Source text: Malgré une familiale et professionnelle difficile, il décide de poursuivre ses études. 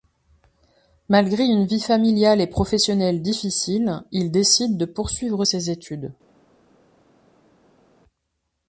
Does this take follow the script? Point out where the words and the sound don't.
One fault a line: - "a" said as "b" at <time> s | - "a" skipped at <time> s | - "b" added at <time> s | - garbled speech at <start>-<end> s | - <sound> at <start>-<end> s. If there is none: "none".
- "vie" added at 1.7 s